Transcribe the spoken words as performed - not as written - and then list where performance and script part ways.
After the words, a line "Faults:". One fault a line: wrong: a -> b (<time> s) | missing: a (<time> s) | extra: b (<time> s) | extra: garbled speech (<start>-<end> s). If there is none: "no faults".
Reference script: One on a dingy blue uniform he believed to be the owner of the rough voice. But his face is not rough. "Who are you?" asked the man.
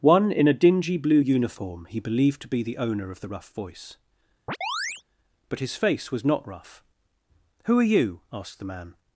One in a dingy blue uniform he believed to be the owner of the rough voice. But his face was not rough. "Who are you?" asked the man.
Faults:
wrong: on -> in (0.3 s)
wrong: is -> was (6.1 s)